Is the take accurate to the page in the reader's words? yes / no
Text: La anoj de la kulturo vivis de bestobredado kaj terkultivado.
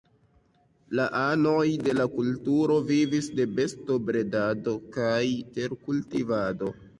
yes